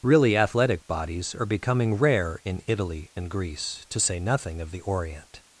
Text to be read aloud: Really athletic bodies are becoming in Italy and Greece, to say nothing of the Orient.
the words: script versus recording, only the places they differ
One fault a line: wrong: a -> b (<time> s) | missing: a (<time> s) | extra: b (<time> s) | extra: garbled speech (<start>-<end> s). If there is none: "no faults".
extra: rare (1.9 s)